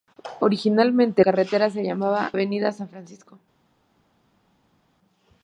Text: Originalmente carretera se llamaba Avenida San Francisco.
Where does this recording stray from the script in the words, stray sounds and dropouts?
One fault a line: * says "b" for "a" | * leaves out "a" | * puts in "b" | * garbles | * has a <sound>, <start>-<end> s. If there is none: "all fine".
all fine